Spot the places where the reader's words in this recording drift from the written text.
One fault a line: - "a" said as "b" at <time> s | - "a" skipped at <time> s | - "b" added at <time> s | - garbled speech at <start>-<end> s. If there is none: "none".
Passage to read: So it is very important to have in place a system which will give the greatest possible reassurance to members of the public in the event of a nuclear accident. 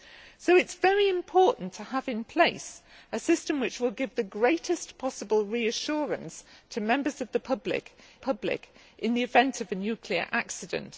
- "public" added at 8.2 s